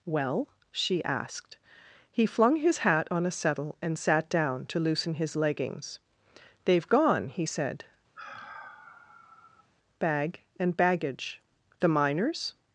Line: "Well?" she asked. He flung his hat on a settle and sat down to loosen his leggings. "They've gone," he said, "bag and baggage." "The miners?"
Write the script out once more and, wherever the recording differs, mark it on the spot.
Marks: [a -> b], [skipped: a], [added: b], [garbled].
"Well?" she asked. He flung his hat on a settle and sat down to loosen his leggings. "They've gone," he said, "bag and baggage." "The miners?"